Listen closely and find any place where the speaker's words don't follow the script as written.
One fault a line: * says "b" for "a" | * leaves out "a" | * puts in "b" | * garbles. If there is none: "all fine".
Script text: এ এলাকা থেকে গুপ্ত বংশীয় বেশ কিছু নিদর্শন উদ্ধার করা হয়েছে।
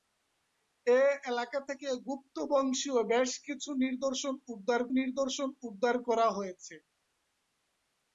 * puts in "নিদর্শন উদ্ধার"